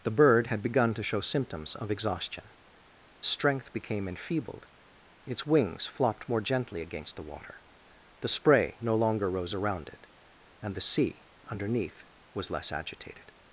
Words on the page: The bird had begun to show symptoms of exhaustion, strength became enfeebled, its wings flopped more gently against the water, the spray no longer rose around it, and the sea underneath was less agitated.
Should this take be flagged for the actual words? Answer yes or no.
no